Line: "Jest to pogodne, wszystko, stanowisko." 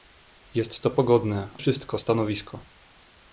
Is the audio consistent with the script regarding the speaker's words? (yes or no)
yes